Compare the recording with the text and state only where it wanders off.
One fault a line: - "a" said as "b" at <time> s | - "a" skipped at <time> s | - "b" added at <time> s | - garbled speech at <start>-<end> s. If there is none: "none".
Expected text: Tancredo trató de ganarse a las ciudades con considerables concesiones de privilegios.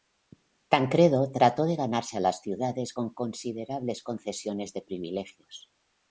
none